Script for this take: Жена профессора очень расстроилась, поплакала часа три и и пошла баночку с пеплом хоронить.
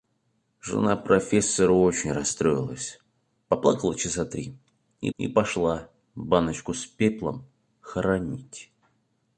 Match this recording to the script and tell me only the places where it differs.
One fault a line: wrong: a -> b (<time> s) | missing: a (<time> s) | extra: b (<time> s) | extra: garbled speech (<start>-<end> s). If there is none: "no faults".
no faults